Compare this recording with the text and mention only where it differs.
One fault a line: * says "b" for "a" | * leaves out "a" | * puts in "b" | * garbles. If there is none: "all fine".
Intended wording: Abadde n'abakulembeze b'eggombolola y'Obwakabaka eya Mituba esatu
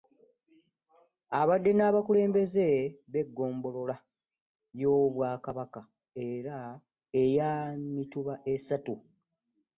all fine